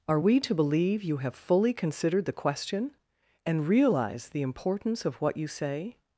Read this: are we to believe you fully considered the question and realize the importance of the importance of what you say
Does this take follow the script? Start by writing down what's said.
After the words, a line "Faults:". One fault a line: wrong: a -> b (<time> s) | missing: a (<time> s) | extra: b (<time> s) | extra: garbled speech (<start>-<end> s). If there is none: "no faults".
are we to believe you have fully considered the question and realize the importance of what you say
Faults:
extra: have (1.2 s)
missing: the importance of (5.2 s)